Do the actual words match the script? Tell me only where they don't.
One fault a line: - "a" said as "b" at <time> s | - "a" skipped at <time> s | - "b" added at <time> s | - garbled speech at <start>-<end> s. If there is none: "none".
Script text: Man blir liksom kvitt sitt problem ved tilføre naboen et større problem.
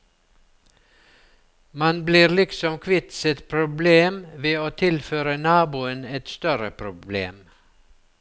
- "å" added at 4.6 s